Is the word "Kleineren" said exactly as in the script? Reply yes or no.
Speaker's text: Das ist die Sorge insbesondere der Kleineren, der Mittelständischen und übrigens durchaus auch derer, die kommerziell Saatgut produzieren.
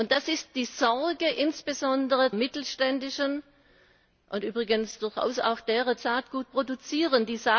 no